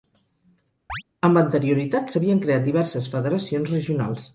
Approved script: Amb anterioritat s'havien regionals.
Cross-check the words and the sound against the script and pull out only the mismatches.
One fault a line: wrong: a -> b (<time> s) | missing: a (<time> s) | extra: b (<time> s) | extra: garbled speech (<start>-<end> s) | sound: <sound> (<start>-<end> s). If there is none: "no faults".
sound: chirp (0.9-1.0 s)
extra: creat diverses federacions (2.5 s)